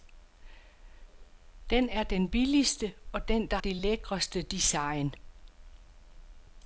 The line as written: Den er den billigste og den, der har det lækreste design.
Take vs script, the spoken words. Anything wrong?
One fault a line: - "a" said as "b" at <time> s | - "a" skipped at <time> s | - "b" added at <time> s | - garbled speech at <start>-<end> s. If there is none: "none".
- "har" skipped at 3.6 s